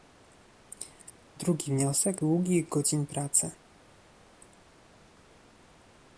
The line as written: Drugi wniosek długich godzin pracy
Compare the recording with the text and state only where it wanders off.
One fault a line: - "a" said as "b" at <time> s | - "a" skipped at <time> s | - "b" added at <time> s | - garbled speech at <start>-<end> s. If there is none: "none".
none